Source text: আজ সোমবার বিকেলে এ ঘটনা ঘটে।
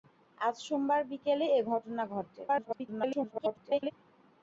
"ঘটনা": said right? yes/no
yes